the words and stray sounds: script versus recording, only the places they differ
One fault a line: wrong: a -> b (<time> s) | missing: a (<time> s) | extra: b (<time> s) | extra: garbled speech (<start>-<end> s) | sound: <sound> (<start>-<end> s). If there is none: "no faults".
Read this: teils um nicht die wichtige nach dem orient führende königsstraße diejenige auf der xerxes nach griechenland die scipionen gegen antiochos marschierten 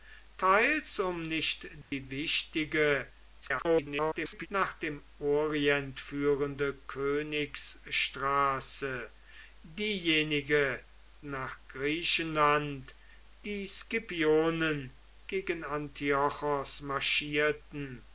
sound: dropout (1.8-1.9 s)
extra: garbled speech (3.4-4.5 s)
missing: auf der xerxes (10.8 s)